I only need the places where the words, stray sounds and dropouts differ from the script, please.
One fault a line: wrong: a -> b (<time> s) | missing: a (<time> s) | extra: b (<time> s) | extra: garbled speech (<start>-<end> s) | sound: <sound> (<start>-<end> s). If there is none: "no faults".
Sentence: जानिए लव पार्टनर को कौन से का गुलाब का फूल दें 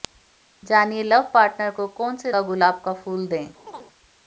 sound: chirp (3.7-3.9 s)